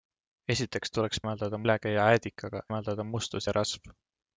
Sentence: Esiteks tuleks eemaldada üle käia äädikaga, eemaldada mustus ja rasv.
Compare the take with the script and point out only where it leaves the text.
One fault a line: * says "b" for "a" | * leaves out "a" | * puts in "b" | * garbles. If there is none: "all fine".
all fine